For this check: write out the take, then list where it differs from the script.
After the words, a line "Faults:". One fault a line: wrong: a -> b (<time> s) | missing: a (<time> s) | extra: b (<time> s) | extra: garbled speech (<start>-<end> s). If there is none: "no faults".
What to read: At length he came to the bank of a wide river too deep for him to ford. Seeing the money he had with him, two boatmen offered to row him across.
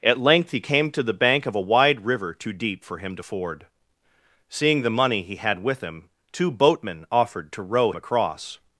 At length he came to the bank of a wide river too deep for him to ford. Seeing the money he had with him, two boatmen offered to row across.
Faults:
missing: him (7.9 s)